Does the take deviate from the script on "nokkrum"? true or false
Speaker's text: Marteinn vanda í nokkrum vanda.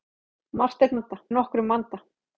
false